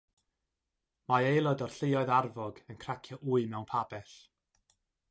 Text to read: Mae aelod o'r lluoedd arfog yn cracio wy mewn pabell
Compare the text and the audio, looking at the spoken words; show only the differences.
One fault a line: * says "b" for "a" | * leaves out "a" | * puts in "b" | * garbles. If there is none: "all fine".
all fine